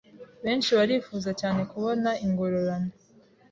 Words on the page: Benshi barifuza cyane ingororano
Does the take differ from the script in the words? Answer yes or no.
yes